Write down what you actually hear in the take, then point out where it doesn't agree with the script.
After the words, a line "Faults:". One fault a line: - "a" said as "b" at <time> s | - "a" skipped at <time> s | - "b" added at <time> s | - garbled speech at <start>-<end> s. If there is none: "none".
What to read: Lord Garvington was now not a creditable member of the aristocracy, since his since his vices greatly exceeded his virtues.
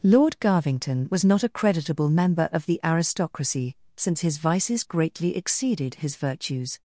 Lord Garvington was not a creditable member of the aristocracy, since his vices greatly exceeded his virtues.
Faults:
- "now" skipped at 1.2 s
- "since his" skipped at 4.4 s